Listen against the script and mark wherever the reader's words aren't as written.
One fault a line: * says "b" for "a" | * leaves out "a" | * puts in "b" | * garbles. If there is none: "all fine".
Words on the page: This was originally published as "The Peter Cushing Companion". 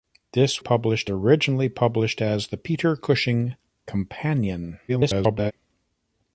* says "published" for "was"
* garbles